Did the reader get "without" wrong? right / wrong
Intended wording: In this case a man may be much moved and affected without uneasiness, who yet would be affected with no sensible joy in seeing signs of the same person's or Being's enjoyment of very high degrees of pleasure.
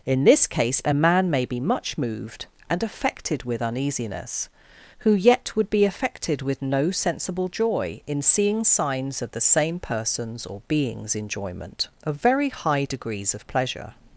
wrong